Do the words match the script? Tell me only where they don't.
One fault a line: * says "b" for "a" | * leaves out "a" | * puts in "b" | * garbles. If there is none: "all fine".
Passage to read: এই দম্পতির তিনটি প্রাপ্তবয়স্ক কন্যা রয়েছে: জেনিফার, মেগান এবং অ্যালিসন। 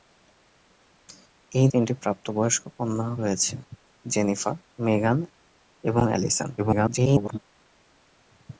* leaves out "দম্পতির"
* garbles